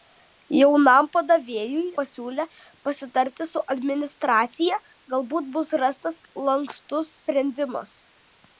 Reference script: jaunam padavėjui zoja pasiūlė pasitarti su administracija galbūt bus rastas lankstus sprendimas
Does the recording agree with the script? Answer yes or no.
no